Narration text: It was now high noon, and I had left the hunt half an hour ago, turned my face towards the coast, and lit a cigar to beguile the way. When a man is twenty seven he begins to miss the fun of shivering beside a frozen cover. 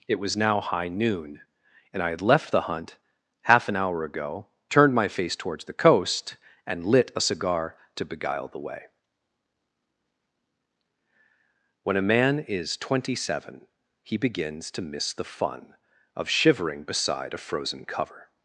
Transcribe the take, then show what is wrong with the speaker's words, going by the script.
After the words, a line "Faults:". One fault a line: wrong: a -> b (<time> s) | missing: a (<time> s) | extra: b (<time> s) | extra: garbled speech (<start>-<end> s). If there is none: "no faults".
It was now high noon, and I had left the hunt half an hour ago, turned my face towards the coast, and lit a cigar to beguile the way. When a man is twenty seven he begins to miss the fun of shivering beside a frozen cover.
Faults:
no faults